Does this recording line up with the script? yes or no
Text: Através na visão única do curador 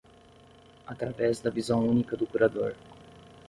no